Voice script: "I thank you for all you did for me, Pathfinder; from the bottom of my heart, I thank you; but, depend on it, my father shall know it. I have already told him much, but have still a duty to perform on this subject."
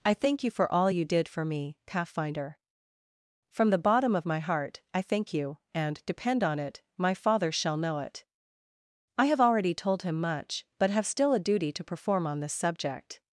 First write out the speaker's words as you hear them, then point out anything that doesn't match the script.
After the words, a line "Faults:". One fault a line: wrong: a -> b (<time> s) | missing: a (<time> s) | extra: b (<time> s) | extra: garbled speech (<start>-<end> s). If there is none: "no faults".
"I thank you for all you did for me, Pathfinder; from the bottom of my heart, I thank you; and, depend on it, my father shall know it. I have already told him much, but have still a duty to perform on this subject."
Faults:
wrong: but -> and (5.7 s)